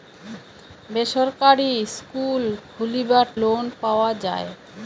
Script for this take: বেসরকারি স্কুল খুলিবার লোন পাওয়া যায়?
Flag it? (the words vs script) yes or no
no